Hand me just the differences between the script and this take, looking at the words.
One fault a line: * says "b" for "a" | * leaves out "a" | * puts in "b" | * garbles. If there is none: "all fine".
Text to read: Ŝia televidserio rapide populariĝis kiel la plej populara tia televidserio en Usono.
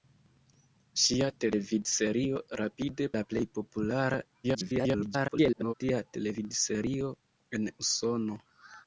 * leaves out "populariĝis kiel"
* garbles